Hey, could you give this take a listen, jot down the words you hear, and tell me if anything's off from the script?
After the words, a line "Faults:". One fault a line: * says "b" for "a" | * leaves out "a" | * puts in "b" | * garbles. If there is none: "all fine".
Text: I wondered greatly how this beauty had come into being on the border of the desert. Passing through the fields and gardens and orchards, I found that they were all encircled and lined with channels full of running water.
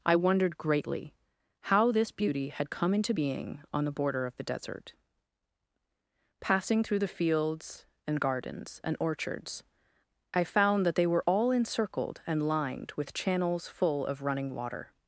I wondered greatly how this beauty had come into being on the border of the desert. Passing through the fields and gardens and orchards, I found that they were all encircled and lined with channels full of running water.
Faults:
all fine